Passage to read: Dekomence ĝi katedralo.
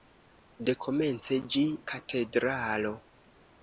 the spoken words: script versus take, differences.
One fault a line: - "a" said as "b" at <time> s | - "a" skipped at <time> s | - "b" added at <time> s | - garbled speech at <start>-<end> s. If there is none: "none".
none